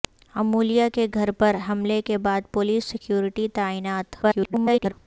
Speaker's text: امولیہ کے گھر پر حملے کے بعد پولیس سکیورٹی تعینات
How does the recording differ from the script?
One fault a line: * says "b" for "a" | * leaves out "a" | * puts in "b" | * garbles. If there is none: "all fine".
* garbles